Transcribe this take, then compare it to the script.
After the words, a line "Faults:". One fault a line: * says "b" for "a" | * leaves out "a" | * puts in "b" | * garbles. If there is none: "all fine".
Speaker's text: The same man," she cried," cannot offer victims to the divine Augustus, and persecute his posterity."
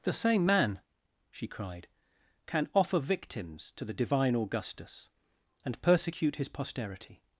The same man," she cried," can offer victims to the divine Augustus, and persecute his posterity."
Faults:
* says "can" for "cannot"